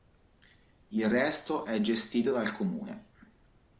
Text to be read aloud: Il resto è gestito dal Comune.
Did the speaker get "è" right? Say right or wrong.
right